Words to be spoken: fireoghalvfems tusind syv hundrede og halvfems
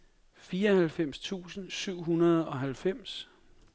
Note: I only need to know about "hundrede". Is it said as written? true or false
true